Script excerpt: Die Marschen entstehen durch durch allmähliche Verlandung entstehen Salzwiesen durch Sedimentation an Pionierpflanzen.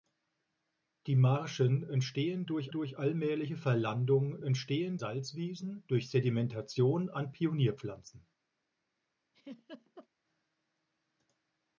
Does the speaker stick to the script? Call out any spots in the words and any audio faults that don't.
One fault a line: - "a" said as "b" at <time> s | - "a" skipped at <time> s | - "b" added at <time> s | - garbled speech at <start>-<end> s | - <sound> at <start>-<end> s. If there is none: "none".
- laugh at 9.3-10.1 s